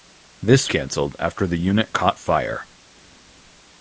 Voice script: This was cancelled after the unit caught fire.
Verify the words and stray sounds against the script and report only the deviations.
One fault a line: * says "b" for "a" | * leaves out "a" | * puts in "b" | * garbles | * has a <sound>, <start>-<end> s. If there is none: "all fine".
* leaves out "was"